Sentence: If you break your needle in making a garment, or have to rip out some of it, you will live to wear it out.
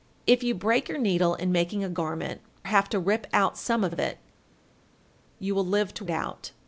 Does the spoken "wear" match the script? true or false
false